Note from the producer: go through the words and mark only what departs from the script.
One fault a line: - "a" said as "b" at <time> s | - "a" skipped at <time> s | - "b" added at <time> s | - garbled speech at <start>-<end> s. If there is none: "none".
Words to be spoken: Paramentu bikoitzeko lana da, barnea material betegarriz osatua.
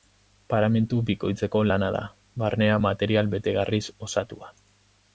none